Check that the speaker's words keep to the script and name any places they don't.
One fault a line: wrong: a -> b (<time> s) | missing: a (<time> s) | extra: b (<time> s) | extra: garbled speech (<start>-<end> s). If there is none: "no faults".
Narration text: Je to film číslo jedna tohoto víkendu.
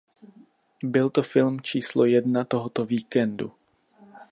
wrong: Je -> Byl (0.8 s)